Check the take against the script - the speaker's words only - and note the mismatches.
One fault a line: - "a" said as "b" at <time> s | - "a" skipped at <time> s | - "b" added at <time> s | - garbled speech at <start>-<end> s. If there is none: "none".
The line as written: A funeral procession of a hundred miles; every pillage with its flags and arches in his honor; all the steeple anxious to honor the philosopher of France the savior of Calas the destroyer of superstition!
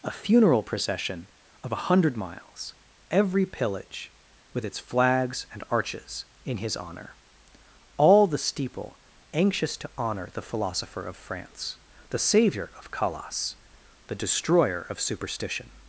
none